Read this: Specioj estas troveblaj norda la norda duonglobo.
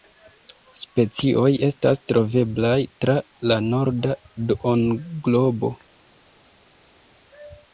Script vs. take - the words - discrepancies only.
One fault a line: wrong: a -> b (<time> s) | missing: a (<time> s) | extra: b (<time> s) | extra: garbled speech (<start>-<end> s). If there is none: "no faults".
wrong: norda -> tra (3.1 s)